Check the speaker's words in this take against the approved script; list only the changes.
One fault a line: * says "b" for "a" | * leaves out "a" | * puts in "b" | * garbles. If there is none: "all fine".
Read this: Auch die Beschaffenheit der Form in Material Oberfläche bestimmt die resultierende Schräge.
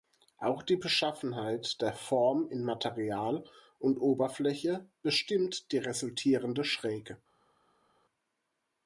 * puts in "und"